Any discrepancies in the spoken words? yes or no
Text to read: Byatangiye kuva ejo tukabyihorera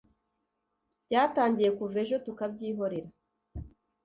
no